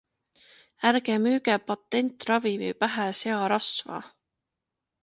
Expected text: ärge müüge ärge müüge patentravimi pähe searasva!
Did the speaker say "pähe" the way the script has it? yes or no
yes